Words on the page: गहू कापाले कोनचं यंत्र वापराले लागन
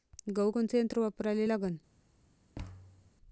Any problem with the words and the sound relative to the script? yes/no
yes